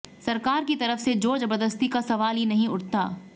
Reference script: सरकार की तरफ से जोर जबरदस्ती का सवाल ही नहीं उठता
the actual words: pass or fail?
pass